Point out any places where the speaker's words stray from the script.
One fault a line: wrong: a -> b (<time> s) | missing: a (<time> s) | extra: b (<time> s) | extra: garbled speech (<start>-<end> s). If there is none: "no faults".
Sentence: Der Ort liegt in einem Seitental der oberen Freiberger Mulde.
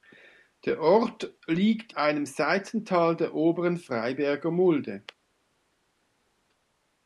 missing: in (1.9 s)